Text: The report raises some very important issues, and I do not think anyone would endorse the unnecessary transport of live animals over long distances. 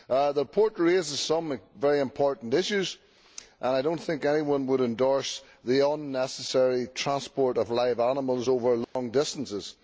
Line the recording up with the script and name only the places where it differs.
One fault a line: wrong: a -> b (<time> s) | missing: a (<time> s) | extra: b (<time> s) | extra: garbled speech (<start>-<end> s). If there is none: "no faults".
no faults